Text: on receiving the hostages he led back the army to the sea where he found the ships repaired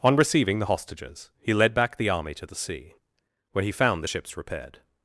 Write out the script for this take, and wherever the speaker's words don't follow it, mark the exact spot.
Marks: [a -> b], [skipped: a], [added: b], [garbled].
on receiving the hostages he led back the army to the sea where he found the ships repaired